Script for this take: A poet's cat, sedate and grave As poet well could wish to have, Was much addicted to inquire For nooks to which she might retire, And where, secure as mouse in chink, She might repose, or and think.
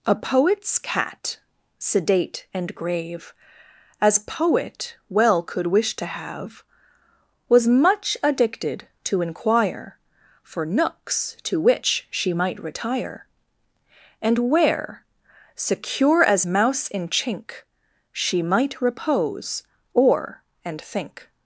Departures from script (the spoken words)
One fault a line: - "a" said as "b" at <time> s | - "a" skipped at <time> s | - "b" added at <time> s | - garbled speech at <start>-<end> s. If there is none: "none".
none